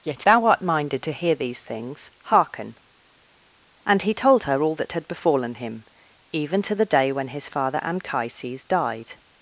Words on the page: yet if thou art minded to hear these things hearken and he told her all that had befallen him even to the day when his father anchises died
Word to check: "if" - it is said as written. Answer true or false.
false